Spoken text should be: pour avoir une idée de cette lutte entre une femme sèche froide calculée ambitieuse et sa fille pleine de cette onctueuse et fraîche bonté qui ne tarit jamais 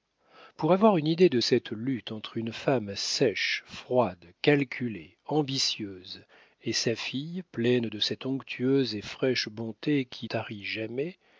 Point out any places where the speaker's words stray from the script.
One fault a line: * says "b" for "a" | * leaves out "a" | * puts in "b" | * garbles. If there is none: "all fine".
* leaves out "ne"